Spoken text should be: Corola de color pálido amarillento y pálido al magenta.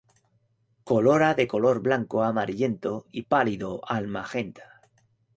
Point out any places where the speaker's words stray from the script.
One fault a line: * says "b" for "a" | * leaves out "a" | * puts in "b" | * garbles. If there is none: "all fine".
* says "blanco" for "pálido"